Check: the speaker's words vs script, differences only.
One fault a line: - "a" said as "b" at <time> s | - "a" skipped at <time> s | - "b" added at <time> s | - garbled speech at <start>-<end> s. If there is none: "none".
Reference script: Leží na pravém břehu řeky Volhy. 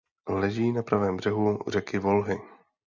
none